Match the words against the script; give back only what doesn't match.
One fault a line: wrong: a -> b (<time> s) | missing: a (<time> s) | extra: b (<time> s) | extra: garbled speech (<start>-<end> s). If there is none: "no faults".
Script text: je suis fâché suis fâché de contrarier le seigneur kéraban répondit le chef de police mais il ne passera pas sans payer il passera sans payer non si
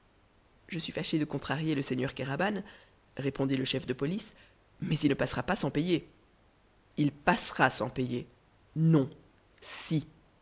missing: suis fâché (1.2 s)